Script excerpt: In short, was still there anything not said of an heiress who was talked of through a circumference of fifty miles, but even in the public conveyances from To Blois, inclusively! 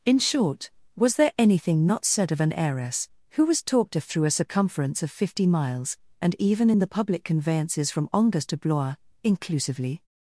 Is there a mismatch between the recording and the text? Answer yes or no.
yes